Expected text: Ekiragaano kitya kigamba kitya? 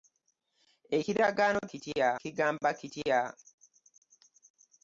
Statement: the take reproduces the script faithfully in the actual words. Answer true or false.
true